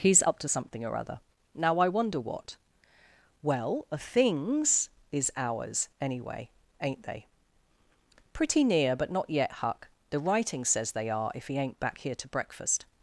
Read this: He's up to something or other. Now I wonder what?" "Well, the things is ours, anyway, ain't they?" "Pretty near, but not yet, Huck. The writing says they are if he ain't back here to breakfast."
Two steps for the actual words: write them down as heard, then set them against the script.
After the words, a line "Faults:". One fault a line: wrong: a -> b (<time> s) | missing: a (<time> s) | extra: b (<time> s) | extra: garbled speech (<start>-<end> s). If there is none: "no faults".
He's up to something or other. Now I wonder what?" "Well, a things is ours, anyway, ain't they?" "Pretty near, but not yet, Huck. The writing says they are if he ain't back here to breakfast."
Faults:
wrong: the -> a (3.9 s)